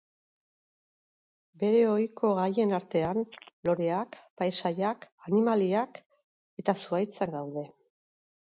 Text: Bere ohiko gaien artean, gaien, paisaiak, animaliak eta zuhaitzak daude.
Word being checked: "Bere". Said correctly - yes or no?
yes